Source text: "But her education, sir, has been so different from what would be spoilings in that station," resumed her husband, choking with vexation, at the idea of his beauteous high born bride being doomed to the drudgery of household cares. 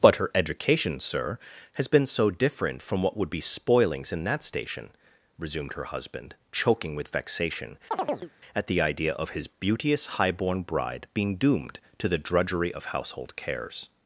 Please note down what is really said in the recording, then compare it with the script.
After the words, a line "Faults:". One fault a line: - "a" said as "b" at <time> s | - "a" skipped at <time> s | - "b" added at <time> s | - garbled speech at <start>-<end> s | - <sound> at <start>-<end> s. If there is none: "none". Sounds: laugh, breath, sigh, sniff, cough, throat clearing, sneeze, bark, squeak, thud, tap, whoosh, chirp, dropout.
"But her education, sir, has been so different from what would be spoilings in that station," resumed her husband, choking with vexation, at the idea of his beauteous high born bride being doomed to the drudgery of household cares.
Faults:
- chirp at 7.9-8.3 s